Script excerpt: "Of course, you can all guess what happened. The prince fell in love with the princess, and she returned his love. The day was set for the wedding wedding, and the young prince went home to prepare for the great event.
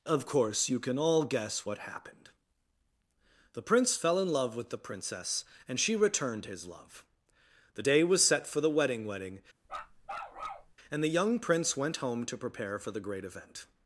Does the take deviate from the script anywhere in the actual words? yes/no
no